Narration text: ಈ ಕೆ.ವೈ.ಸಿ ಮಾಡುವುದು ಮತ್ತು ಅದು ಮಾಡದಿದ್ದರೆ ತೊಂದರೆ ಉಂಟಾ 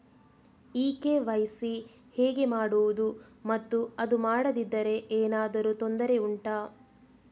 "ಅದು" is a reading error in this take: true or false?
false